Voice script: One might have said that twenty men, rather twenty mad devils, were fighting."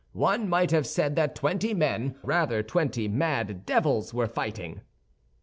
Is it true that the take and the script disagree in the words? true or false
false